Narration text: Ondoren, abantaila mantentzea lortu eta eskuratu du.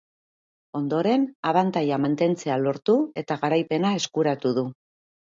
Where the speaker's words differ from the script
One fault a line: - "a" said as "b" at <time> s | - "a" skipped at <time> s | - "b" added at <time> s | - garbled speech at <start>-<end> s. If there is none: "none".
- "garaipena" added at 3.4 s